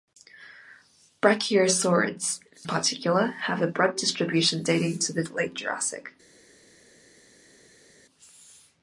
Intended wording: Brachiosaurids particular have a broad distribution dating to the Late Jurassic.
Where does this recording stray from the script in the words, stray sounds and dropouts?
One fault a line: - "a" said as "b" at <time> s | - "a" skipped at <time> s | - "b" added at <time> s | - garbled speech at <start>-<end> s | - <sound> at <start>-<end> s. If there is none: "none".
none